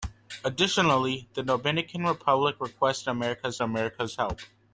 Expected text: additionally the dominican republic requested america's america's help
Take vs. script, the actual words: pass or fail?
pass